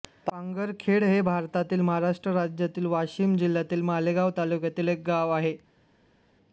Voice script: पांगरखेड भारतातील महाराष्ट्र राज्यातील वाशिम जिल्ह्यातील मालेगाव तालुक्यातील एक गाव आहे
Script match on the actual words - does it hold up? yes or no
no